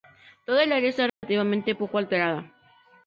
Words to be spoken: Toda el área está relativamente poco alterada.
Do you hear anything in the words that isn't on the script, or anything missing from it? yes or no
no